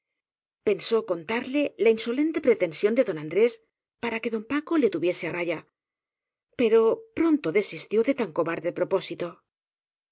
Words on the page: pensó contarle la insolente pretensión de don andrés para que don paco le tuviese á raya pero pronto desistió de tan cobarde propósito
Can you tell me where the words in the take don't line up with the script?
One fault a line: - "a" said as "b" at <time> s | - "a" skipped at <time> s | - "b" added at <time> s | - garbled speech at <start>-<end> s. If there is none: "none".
none